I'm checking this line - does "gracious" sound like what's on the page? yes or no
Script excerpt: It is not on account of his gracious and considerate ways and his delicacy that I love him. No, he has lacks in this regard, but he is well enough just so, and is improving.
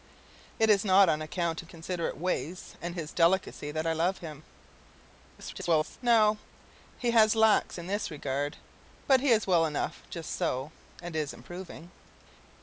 no